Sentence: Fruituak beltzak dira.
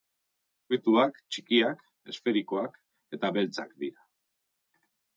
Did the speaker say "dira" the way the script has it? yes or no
yes